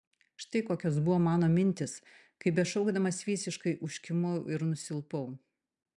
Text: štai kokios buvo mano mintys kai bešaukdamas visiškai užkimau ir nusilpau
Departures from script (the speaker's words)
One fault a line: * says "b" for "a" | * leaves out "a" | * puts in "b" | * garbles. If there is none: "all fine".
all fine